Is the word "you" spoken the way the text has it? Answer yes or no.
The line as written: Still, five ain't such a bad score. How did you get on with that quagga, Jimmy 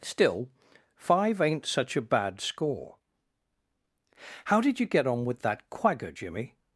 yes